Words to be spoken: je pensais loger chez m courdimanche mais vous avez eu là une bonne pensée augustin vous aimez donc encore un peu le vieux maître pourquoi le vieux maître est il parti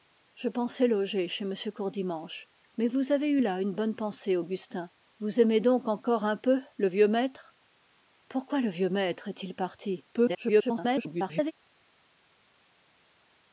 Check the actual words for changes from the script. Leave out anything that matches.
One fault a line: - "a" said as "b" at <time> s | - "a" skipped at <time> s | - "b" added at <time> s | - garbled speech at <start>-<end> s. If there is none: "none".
- garbled speech at 10.1-11.5 s